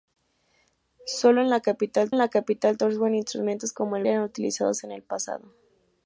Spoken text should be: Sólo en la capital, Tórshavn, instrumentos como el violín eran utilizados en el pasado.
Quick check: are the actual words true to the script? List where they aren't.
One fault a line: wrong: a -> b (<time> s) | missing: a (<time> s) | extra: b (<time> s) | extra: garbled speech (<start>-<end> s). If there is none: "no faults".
extra: en la capital (2.1 s)
missing: violín (4.1 s)